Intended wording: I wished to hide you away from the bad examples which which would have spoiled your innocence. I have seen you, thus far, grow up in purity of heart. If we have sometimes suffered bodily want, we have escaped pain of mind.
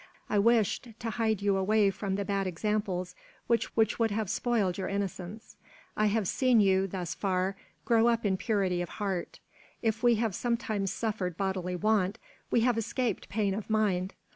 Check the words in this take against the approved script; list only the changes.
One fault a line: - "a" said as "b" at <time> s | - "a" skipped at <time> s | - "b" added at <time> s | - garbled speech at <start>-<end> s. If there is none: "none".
none